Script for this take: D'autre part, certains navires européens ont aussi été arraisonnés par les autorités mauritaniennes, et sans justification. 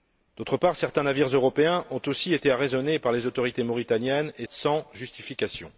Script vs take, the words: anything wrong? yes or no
no